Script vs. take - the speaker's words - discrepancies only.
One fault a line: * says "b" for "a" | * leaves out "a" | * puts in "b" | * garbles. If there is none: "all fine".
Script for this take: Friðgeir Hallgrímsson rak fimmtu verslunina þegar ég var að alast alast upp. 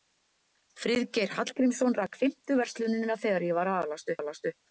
all fine